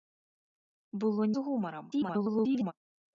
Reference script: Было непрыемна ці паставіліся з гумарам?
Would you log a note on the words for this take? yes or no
yes